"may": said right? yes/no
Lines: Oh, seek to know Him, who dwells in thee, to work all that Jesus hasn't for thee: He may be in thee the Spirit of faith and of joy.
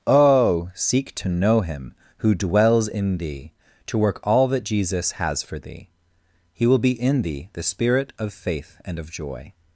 no